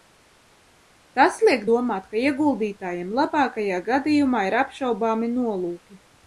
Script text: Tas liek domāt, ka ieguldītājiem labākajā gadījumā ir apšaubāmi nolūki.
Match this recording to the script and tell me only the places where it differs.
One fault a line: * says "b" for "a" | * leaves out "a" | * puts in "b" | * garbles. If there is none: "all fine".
all fine